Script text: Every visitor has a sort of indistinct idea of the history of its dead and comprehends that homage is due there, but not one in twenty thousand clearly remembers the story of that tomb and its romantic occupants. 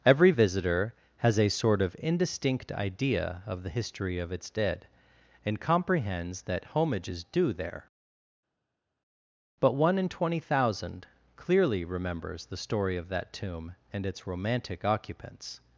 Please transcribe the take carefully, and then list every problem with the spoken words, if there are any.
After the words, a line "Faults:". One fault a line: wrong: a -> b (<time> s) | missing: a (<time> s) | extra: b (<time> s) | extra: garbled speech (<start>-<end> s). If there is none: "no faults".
Every visitor has a sort of indistinct idea of the history of its dead and comprehends that homage is due there, but one in twenty thousand clearly remembers the story of that tomb and its romantic occupants.
Faults:
missing: not (9.7 s)